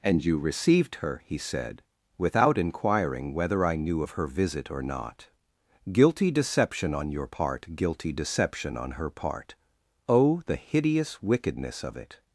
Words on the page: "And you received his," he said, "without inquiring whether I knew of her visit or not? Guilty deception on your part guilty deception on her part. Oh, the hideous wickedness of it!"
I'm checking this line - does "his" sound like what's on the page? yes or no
no